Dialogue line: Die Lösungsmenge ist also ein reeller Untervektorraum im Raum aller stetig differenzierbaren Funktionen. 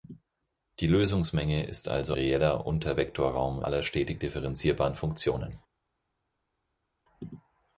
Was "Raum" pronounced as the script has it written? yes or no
no